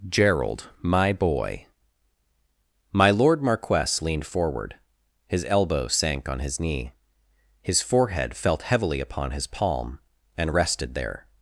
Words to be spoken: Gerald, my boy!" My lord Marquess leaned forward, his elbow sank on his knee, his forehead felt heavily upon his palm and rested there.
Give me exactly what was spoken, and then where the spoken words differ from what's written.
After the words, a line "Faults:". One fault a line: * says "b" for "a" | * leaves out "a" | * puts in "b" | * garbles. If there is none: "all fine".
Gerald, my boy!" My lord Marquess leaned forward, his elbow sank on his knee, his forehead felt heavily upon his palm and rested there.
Faults:
all fine